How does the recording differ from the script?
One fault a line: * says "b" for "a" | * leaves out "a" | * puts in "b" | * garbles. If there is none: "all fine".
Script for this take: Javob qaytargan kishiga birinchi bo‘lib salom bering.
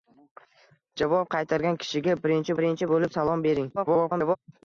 * puts in "birinchi"
* garbles